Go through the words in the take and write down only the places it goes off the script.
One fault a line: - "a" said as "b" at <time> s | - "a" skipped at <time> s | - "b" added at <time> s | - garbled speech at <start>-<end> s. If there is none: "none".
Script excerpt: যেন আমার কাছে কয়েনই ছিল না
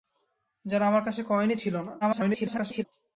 - garbled speech at 2.0-2.8 s